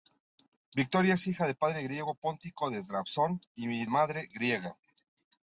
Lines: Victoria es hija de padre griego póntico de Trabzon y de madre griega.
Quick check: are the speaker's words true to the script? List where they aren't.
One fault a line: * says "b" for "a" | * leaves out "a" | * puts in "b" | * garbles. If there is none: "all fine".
* leaves out "de"